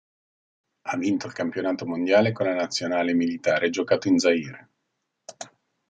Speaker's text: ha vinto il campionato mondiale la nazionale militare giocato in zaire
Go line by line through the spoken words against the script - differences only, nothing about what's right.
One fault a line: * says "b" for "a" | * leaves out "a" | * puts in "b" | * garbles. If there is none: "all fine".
* puts in "con"